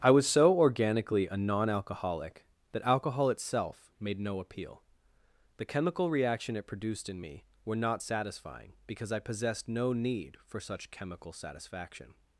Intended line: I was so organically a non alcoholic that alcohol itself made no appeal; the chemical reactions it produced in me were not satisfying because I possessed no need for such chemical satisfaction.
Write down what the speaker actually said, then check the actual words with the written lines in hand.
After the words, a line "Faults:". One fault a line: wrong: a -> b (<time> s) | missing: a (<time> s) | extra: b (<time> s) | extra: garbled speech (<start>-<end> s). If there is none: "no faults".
I was so organically a non alcoholic that alcohol itself made no appeal; the chemical reaction it produced in me were not satisfying because I possessed no need for such chemical satisfaction.
Faults:
wrong: reactions -> reaction (6.1 s)